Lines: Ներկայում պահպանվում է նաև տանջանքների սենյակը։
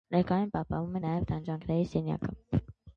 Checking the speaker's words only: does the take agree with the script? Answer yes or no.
yes